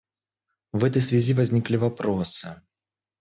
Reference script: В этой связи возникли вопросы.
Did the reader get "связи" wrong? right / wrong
right